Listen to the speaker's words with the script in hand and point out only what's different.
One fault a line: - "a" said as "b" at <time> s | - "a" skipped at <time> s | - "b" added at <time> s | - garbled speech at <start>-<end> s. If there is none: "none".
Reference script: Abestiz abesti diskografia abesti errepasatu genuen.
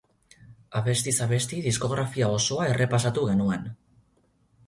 - "abesti" said as "osoa" at 2.4 s